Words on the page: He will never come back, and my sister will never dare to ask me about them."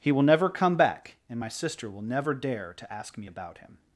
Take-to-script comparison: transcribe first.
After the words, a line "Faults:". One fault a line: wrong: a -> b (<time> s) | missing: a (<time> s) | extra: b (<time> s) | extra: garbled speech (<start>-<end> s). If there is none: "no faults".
He will never come back, and my sister will never dare to ask me about him."
Faults:
wrong: them -> him (3.6 s)